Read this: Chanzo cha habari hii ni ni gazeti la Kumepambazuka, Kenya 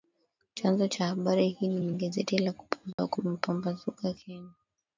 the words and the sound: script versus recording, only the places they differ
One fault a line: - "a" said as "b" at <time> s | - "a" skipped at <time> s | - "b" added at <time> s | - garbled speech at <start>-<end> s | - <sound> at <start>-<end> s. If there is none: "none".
- dropout at 2.9-3.0 s